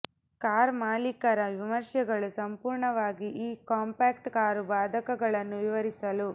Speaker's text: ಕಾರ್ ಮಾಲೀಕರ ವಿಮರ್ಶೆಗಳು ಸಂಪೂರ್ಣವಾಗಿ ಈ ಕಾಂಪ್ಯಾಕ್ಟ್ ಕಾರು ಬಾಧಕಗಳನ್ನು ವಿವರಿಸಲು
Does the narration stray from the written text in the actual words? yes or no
no